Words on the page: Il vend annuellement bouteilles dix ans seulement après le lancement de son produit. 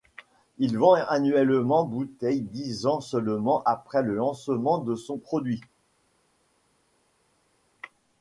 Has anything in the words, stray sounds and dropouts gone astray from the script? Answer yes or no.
no